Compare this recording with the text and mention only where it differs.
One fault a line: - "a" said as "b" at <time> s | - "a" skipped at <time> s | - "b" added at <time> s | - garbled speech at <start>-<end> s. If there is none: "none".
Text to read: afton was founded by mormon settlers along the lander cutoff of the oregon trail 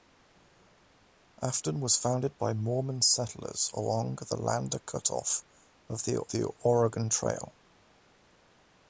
- "the" added at 6.3 s